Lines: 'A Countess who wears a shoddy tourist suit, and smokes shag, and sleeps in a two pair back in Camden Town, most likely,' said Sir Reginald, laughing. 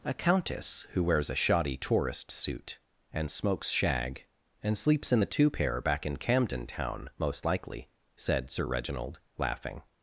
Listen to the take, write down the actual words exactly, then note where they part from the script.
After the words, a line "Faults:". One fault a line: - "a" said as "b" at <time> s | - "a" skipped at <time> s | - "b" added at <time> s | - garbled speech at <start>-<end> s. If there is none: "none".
'A Countess who wears a shoddy tourist suit, and smokes shag, and sleeps in the two pair back in Camden Town, most likely,' said Sir Reginald, laughing.
Faults:
- "a" said as "the" at 5.2 s